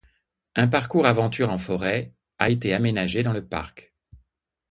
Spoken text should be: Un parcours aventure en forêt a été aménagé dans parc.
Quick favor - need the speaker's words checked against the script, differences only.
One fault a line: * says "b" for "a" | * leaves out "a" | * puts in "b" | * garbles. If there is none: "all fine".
* puts in "le"